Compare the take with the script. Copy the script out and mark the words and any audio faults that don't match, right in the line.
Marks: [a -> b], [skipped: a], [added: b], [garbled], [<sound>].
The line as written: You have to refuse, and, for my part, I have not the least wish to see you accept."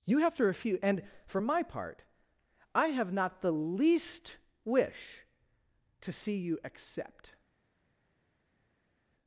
You have to refuse, and, for my part, I have not the least wish to see you accept."